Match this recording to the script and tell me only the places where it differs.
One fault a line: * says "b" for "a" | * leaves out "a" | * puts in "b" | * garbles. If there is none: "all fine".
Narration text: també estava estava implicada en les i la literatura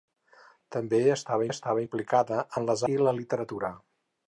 all fine